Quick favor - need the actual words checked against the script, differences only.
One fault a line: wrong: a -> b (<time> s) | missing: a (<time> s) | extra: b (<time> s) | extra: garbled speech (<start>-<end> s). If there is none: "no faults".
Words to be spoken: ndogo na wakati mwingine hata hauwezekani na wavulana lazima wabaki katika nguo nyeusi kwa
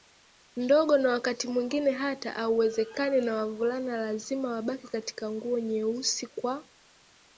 no faults